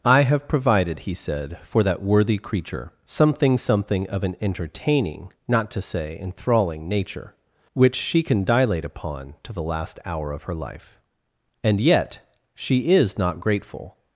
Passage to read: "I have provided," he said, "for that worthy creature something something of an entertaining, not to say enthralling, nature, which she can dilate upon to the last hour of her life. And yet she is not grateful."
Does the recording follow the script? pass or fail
pass